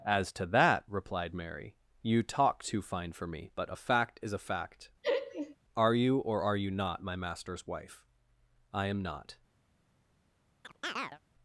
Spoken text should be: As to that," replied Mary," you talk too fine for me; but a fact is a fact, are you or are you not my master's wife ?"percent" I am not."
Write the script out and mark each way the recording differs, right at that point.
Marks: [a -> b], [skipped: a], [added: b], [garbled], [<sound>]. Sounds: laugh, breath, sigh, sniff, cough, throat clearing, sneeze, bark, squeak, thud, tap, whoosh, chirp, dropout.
As to that," replied Mary," you talk too fine for me; but a fact is a fact, [laugh] are you or are you not my master's wife [skipped: ?"percent"] I am not." [chirp]